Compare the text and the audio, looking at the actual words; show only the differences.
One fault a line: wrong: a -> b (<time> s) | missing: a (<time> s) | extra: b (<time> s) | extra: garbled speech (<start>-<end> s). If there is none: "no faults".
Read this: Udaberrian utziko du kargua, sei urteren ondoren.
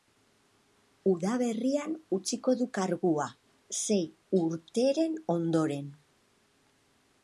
no faults